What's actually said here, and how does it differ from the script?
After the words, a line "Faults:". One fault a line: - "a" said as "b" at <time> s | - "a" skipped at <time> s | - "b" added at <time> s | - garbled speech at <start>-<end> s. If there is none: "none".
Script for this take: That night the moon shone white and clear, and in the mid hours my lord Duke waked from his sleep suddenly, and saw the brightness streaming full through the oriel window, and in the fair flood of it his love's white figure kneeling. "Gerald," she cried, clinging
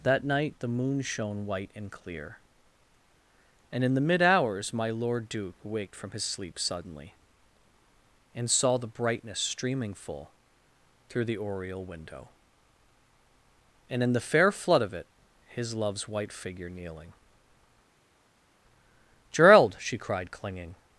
That night the moon shone white and clear, and in the mid hours my lord Duke waked from his sleep suddenly, and saw the brightness streaming full through the oriel window, and in the fair flood of it his love's white figure kneeling. "Gerald," she cried, clinging
Faults:
none